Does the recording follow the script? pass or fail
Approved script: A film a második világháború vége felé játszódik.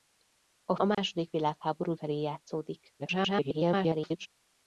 fail